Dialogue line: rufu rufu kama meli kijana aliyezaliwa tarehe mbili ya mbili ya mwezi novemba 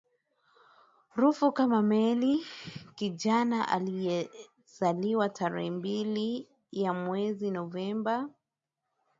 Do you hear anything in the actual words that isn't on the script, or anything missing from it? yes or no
yes